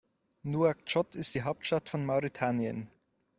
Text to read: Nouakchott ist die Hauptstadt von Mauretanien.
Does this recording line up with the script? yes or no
yes